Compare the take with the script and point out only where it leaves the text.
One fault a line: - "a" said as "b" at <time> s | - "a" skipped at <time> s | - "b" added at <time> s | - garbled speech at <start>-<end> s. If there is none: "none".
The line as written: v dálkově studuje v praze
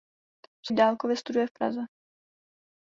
none